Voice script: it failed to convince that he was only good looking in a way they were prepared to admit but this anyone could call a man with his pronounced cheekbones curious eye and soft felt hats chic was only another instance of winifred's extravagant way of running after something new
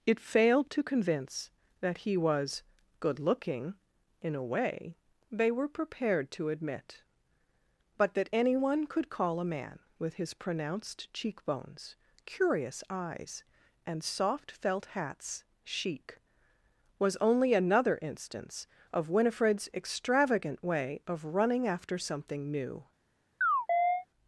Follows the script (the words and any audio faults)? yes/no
no